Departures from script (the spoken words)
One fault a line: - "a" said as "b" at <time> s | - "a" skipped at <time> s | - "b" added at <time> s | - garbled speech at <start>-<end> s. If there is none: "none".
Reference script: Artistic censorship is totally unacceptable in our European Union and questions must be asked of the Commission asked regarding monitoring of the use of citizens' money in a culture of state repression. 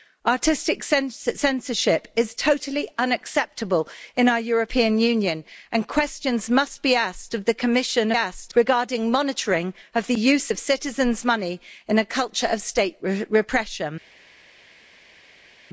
none